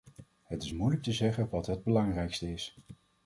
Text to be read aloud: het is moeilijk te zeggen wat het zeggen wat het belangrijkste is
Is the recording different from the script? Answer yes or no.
yes